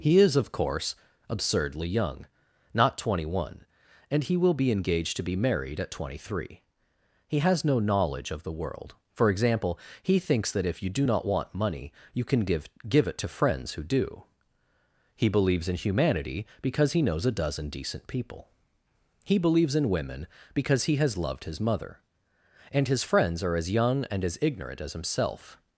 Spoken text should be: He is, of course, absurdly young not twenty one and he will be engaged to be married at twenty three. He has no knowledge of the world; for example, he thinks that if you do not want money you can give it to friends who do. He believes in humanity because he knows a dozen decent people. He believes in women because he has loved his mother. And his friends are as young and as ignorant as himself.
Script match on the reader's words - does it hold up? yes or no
no